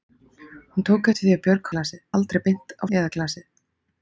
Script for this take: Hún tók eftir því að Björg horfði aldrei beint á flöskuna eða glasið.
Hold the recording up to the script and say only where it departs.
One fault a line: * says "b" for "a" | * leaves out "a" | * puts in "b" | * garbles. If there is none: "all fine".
* says "glasið" for "horfði"
* leaves out "flöskuna"